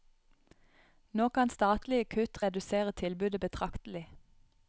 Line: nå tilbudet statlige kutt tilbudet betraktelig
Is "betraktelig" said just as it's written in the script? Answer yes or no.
yes